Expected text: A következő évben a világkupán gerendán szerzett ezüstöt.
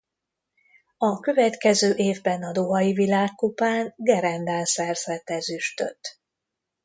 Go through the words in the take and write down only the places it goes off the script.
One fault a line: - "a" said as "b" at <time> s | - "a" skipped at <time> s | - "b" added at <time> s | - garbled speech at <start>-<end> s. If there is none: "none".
- "dohai" added at 2.5 s